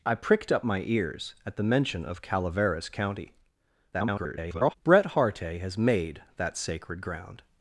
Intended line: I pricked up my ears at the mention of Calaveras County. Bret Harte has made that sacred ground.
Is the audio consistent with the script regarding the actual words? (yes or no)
no